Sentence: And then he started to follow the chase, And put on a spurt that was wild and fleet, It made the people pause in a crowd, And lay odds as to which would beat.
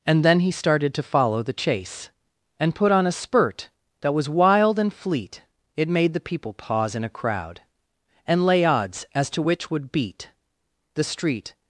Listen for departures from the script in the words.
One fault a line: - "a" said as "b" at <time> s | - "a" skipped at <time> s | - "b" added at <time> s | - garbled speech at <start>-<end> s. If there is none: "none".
- "The street" added at 10.9 s